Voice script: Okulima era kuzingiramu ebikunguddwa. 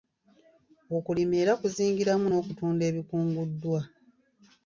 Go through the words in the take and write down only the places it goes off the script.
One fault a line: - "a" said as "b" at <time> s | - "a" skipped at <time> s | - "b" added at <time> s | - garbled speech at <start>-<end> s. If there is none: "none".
- "n'okutunda" added at 2.3 s